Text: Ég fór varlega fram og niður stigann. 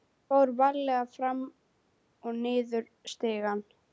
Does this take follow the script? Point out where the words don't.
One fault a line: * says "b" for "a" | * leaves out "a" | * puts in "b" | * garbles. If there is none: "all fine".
all fine